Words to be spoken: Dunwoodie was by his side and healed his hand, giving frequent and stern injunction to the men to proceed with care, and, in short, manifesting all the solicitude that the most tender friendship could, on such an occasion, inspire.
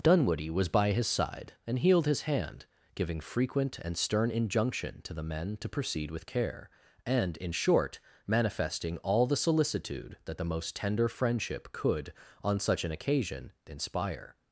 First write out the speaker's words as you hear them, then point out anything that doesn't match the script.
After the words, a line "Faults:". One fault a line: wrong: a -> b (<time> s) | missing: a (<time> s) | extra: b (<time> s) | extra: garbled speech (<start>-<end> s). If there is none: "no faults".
Dunwoodie was by his side and healed his hand, giving frequent and stern injunction to the men to proceed with care, and, in short, manifesting all the solicitude that the most tender friendship could, on such an occasion, inspire.
Faults:
no faults